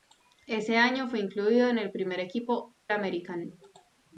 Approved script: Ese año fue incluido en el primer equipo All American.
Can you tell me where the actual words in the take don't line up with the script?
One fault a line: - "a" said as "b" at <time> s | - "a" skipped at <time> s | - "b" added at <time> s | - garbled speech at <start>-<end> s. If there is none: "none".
- "All" skipped at 2.8 s